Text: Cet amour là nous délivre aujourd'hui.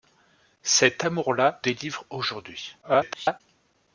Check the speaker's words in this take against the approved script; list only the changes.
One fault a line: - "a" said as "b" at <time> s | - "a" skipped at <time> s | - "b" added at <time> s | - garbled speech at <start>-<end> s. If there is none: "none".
- "nous" skipped at 1.6 s
- garbled speech at 2.8-3.4 s